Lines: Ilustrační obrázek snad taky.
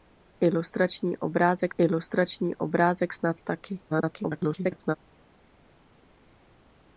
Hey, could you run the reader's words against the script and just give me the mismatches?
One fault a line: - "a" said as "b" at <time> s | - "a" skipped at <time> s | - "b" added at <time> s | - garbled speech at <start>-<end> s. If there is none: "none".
- "ilustrační obrázek" added at 1.8 s
- garbled speech at 3.9-5.0 s